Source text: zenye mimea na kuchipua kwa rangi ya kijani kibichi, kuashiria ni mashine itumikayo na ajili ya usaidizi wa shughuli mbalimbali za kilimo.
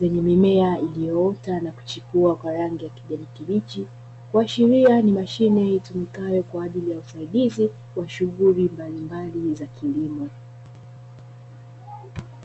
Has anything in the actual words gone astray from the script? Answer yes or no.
yes